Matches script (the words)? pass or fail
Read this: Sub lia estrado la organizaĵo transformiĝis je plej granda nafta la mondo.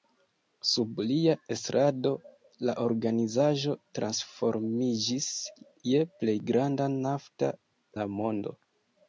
pass